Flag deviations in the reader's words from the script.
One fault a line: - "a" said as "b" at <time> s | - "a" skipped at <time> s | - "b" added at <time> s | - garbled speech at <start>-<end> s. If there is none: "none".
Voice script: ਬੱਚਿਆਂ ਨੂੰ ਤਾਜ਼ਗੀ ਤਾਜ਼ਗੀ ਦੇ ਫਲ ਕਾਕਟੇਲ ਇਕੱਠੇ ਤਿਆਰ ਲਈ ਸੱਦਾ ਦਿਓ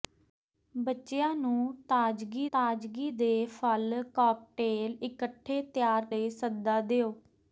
none